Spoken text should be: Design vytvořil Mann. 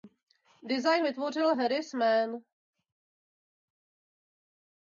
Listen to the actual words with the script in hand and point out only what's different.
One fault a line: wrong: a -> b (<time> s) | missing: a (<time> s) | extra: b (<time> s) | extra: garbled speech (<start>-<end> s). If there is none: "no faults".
extra: Harris (1.5 s)